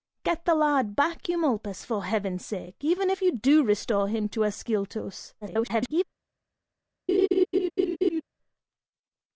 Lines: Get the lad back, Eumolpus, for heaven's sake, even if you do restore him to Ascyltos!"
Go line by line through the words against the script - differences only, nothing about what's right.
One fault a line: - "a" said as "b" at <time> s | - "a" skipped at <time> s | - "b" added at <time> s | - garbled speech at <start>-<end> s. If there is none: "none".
- garbled speech at 5.4-6.0 s